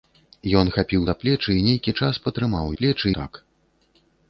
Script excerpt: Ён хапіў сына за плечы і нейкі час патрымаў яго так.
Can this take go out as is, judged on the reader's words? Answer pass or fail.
fail